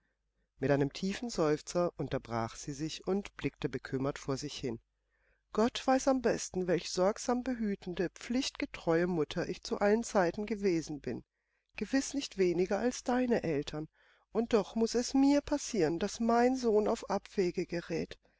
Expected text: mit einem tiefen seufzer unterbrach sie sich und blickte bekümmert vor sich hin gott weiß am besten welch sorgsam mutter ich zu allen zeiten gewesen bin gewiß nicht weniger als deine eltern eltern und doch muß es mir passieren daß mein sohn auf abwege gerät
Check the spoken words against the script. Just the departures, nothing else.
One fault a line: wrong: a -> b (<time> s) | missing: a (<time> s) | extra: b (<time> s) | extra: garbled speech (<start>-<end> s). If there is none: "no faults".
extra: behütende pflichtgetreue (7.4 s)
missing: eltern (13.9 s)